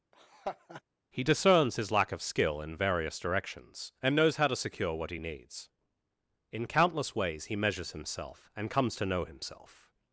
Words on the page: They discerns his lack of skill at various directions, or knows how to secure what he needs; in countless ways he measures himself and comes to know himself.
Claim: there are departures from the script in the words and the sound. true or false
true